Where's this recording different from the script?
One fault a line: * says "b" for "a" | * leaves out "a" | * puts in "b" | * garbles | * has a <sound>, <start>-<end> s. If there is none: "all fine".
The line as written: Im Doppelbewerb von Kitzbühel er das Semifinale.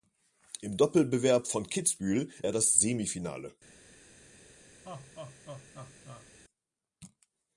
* has a laugh, 4.8-6.3 s